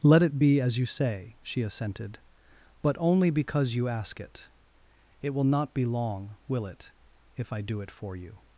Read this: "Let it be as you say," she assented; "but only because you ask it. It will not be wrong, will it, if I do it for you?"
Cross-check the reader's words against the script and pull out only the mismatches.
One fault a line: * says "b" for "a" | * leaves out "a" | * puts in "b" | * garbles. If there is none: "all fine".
* says "long" for "wrong"